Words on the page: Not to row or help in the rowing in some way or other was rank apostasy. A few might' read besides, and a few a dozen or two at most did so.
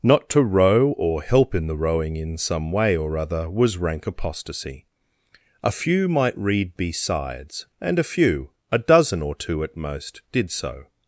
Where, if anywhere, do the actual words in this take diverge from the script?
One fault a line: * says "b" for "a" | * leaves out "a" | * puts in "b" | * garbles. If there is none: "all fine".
all fine